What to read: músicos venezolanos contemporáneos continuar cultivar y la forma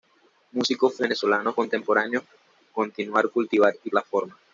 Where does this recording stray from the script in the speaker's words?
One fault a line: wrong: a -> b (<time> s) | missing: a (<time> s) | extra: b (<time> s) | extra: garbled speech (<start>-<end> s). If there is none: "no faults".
no faults